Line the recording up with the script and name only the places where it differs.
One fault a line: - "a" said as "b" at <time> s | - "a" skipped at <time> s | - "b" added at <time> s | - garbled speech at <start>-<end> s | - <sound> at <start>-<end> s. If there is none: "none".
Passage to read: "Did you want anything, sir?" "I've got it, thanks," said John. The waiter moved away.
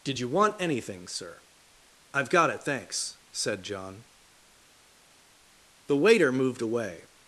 none